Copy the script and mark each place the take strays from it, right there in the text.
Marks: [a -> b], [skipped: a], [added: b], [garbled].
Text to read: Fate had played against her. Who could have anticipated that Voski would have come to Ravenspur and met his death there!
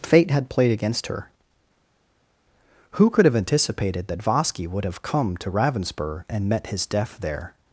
Fate had played against her. Who could have anticipated that Voski would have come to Ravenspur and met his death there!